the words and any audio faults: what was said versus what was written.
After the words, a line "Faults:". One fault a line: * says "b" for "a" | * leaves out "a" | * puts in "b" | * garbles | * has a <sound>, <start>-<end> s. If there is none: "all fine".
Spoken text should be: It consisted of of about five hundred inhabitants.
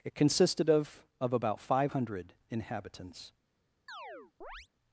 It consisted of of about five hundred inhabitants.
Faults:
* has a chirp, 3.9-4.7 s